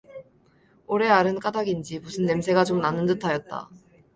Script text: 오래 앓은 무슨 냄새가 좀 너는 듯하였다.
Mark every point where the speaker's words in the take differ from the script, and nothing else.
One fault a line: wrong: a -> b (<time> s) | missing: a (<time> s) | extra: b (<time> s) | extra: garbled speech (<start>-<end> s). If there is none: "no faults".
extra: 까닭인지 (1.4 s)
wrong: 너는 -> 나는 (2.8 s)